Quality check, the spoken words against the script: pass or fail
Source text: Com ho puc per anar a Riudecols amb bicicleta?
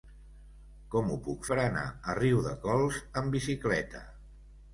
pass